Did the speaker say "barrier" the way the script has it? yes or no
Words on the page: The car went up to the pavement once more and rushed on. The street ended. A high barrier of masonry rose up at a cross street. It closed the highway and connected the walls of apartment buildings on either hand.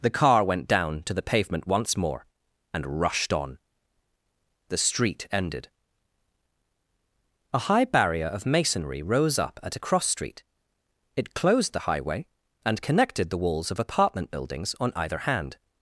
yes